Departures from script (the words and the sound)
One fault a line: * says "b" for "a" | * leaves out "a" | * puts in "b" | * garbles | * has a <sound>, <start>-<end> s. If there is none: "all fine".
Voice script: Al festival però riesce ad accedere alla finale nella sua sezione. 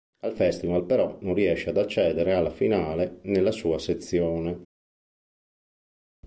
* puts in "non"